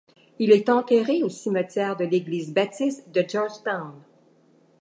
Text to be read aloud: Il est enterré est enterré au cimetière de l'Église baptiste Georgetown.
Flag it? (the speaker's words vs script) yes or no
yes